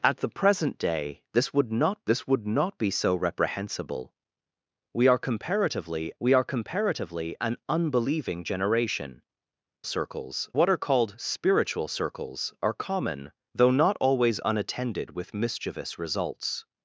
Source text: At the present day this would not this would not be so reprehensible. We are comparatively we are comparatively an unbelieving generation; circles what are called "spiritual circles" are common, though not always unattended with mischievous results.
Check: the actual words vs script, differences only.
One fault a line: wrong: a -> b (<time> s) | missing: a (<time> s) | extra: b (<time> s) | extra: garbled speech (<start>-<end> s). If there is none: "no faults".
no faults